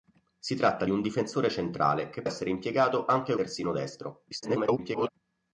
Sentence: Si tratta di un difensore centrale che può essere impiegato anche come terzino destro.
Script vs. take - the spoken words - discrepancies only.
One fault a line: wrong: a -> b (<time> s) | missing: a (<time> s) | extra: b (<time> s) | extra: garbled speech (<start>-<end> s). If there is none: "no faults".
missing: può (2.2 s)
missing: come (3.3 s)
extra: garbled speech (4.3-5.1 s)